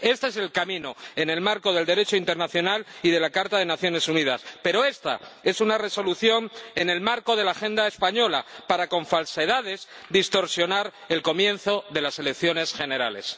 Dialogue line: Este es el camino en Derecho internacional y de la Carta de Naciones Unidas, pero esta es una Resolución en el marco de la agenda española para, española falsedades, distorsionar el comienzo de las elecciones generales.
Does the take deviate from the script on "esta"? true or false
false